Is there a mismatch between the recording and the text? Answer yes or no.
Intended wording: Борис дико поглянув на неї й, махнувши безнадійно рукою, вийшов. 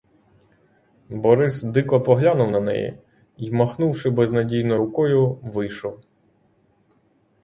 no